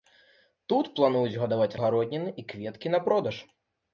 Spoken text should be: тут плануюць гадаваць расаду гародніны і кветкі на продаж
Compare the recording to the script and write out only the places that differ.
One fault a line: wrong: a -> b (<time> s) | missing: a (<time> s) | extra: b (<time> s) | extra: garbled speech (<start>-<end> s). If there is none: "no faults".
missing: расаду (1.8 s)